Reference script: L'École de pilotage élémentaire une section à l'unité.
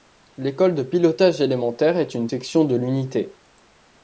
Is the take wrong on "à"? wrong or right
wrong